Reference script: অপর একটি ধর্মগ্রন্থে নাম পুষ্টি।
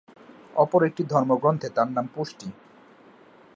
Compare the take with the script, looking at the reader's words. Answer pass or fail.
fail